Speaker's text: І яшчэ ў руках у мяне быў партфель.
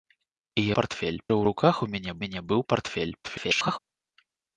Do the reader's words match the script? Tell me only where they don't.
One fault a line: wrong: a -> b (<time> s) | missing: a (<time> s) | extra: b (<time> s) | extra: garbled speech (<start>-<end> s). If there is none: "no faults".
wrong: яшчэ -> партфель (0.8 s)
extra: мяне (2.3 s)
extra: garbled speech (3.2-3.8 s)